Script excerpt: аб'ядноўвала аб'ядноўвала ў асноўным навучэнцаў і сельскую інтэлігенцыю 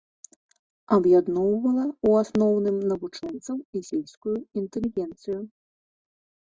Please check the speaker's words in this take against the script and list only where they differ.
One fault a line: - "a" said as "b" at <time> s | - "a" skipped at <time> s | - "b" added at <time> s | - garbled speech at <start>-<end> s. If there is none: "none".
- "аб'ядноўвала" skipped at 1.8 s